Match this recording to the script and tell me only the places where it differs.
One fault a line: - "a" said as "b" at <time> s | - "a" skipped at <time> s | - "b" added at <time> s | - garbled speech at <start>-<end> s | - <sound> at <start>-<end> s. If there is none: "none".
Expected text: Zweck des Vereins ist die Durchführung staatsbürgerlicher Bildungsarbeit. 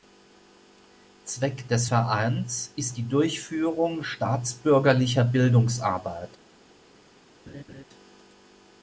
- laugh at 7.5-7.8 s